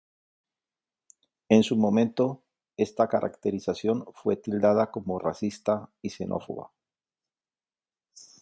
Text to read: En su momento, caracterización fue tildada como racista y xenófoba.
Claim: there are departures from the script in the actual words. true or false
true